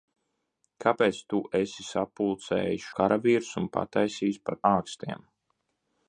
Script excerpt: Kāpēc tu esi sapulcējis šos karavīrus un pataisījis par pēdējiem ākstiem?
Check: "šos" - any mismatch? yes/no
yes